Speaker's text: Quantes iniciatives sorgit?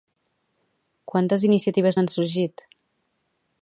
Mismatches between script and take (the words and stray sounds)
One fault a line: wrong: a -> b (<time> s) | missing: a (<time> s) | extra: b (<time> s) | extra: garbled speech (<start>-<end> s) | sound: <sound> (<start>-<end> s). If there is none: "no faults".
extra: n'han (2.0 s)